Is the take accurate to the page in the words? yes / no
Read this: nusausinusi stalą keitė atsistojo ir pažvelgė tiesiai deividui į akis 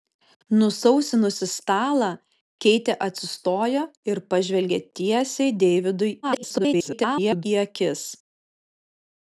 no